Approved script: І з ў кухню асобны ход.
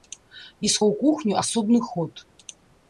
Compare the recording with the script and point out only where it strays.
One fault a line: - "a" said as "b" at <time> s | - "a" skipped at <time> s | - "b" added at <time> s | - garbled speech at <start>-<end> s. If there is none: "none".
none